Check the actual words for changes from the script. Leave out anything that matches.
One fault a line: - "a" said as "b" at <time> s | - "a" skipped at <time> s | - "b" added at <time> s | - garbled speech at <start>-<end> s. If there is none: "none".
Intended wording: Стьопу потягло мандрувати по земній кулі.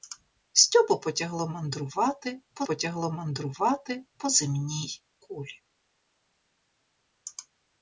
- "потягло мандрувати по" added at 2.6 s